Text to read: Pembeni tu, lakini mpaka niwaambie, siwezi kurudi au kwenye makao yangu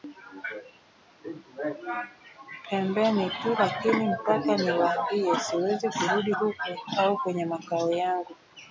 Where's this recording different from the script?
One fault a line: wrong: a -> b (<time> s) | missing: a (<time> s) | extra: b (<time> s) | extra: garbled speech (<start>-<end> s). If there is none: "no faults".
extra: huko (6.3 s)